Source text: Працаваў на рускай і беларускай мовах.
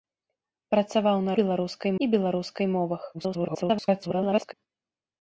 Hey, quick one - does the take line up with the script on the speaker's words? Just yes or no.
no